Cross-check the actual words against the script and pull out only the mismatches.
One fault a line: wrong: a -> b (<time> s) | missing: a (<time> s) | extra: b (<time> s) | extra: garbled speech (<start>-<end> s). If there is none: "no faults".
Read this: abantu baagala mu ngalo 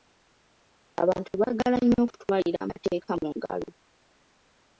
extra: nnyo okutwalira amateeka (1.8 s)